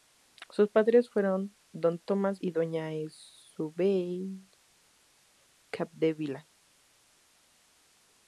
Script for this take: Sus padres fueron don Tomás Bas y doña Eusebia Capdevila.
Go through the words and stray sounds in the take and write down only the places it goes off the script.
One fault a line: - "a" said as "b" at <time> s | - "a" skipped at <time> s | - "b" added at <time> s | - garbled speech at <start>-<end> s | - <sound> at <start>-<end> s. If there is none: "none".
- "Bas" skipped at 2.4 s